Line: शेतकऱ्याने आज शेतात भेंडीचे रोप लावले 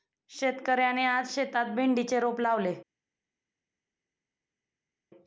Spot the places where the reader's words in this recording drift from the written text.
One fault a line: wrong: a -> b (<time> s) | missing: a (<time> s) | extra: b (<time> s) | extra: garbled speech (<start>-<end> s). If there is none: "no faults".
no faults